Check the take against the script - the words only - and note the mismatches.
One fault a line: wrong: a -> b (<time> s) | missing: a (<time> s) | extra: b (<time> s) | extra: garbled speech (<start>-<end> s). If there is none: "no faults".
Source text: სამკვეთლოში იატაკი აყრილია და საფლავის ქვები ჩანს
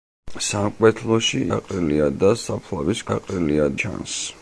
missing: იატაკი (1.4 s)
wrong: ქვები -> აყრილია (3.2 s)